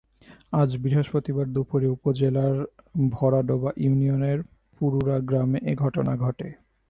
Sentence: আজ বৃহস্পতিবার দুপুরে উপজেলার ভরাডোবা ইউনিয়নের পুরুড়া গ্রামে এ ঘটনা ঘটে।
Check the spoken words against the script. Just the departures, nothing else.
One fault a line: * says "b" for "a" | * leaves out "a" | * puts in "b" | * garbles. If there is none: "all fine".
all fine